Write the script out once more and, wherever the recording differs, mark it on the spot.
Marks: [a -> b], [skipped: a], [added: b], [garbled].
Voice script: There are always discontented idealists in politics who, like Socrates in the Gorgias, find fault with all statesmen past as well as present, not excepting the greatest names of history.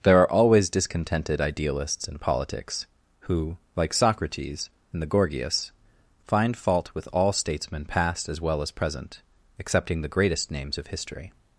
There are always discontented idealists in politics who, like Socrates in the Gorgias, find fault with all statesmen past as well as present, [skipped: not] excepting the greatest names of history.